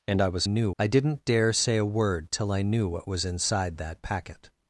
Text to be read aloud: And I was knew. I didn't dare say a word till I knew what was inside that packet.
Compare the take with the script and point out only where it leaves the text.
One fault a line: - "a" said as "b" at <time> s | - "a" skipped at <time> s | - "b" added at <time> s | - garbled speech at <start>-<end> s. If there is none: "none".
none